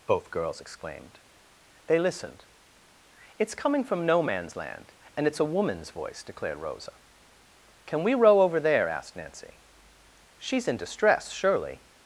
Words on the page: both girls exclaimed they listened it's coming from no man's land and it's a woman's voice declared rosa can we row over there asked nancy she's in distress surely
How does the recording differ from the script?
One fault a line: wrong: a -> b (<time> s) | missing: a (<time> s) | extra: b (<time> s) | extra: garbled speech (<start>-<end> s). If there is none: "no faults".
no faults